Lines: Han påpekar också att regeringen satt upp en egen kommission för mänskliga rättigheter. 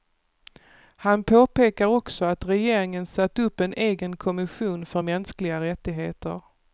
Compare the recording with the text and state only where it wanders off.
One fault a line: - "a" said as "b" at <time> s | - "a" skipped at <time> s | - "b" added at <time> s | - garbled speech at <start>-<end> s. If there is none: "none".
none